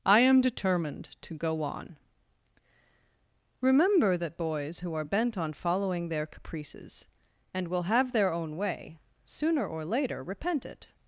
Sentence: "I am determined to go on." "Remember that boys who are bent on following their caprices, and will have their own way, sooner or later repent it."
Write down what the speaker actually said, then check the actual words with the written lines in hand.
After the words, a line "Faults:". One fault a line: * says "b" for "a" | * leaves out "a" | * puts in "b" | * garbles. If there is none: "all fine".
"I am determined to go on." "Remember that boys who are bent on following their caprices, and will have their own way, sooner or later repent it."
Faults:
all fine